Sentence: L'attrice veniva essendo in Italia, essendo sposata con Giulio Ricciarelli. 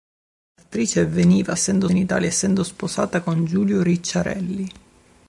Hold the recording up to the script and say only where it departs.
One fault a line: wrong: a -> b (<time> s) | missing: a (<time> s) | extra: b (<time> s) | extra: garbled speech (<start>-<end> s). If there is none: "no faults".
no faults